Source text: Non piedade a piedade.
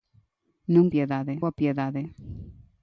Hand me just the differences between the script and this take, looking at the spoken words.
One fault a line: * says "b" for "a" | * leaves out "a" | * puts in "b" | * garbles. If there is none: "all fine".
all fine